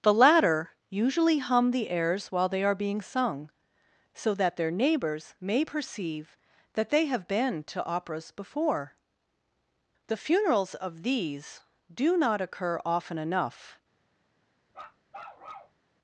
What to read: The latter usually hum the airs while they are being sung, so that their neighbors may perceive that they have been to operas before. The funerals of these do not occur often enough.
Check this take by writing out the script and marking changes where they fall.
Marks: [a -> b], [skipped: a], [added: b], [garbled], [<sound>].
The latter usually hum the airs while they are being sung, so that their neighbors may perceive that they have been to operas before. The funerals of these do not occur often enough. [bark]